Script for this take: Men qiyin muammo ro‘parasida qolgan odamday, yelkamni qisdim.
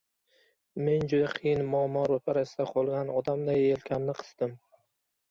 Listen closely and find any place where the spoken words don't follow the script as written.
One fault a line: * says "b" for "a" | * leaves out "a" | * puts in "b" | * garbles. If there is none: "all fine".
* puts in "juda"